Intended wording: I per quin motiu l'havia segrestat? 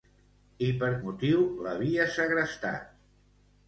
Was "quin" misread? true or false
true